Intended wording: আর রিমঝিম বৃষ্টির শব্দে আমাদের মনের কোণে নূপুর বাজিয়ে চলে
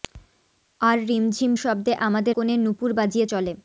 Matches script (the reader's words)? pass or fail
fail